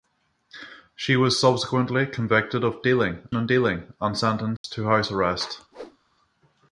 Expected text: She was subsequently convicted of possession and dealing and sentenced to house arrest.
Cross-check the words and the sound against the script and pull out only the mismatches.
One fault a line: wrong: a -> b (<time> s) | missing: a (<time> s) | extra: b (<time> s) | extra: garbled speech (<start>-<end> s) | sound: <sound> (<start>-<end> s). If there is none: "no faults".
wrong: possession -> dealing (2.8 s)
sound: dropout (4.6-4.6 s)
sound: whoosh (5.7-6.0 s)